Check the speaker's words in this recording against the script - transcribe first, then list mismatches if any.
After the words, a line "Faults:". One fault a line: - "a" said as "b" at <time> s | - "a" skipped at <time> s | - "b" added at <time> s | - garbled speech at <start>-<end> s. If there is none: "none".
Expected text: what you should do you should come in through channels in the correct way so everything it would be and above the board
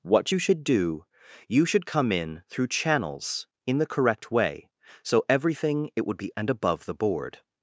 what you should do you should come in through channels in the correct way so everything it would be and above the board
Faults:
none